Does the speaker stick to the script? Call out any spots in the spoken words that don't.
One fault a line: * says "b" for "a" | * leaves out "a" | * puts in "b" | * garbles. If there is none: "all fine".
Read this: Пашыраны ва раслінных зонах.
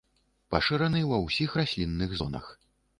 * puts in "ўсіх"